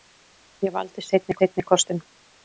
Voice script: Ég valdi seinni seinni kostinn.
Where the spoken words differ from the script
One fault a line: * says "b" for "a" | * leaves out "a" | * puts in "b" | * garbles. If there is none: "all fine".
all fine